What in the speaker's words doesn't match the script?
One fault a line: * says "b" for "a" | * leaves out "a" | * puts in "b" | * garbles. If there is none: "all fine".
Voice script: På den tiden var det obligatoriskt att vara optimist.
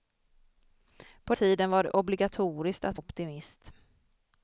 * leaves out "den"
* leaves out "vara"